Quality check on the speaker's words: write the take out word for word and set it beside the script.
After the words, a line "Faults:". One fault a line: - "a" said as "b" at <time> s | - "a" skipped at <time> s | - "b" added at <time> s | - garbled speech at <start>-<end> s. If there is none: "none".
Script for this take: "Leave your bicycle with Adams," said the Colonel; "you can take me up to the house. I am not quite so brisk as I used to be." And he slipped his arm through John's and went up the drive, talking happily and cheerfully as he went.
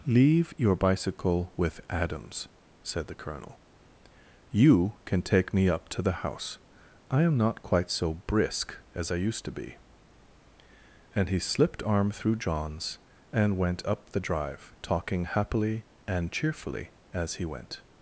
"Leave your bicycle with Adams," said the Colonel; "you can take me up to the house. I am not quite so brisk as I used to be." And he slipped arm through John's and went up the drive, talking happily and cheerfully as he went.
Faults:
- "his" skipped at 11.8 s